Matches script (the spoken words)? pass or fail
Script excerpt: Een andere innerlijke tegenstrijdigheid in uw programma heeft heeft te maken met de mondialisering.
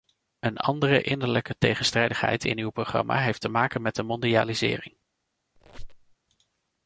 fail